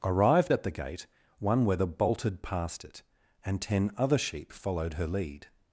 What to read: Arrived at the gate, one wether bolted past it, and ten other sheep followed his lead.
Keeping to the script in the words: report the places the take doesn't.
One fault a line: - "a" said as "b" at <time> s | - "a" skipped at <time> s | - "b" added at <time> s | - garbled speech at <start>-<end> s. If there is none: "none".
- "his" said as "her" at 4.9 s